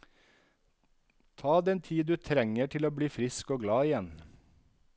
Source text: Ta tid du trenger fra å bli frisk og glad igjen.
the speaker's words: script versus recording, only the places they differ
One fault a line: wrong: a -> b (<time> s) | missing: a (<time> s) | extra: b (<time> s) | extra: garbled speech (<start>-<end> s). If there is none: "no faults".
extra: den (1.6 s)
wrong: fra -> til (2.7 s)